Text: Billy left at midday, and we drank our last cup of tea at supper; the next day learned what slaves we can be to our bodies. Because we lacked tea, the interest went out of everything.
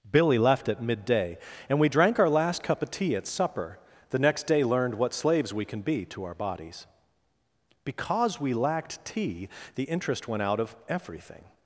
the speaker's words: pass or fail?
pass